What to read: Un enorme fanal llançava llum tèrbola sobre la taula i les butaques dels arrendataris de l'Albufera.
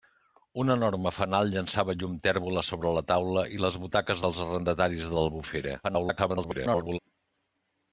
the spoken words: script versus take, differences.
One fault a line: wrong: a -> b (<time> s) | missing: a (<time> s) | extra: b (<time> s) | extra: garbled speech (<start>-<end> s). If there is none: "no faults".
extra: garbled speech (5.8-7.0 s)